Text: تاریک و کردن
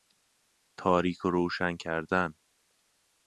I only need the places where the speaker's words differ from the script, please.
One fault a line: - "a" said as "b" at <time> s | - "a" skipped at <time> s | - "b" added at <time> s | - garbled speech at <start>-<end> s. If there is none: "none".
- "روشن" added at 1.3 s